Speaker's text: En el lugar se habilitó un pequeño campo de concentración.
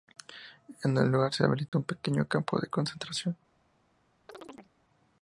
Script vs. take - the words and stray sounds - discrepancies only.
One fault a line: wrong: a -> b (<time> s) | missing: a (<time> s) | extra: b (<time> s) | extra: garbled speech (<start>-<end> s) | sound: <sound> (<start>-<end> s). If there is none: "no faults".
sound: dropout (1.7-1.7 s)
sound: chirp (4.3-4.7 s)